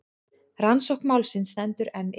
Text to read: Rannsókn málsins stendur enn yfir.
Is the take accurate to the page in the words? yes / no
yes